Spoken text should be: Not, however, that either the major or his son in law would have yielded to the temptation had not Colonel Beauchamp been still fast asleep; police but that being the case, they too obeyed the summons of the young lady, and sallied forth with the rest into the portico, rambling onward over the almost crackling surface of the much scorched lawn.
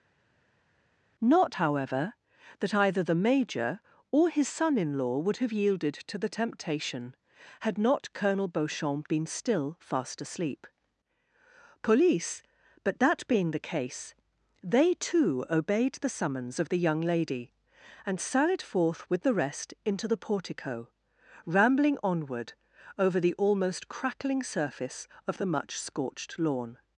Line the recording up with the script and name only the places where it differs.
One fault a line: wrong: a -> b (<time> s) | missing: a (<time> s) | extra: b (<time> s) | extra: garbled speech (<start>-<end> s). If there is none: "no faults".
no faults